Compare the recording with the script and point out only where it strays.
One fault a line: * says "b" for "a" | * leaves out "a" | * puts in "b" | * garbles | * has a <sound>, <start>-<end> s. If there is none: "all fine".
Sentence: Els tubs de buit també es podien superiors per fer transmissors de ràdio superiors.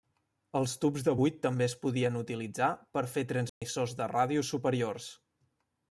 * says "utilitzar" for "superiors"
* has a dropout, 3.5-3.6 s